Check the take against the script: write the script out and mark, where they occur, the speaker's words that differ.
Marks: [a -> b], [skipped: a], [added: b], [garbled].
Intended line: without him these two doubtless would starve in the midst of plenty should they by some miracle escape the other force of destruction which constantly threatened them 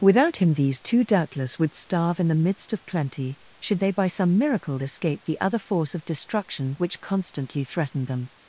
without him these two doubtless would starve in the midst of plenty should they by some miracle escape the other force of destruction which constantly threatened them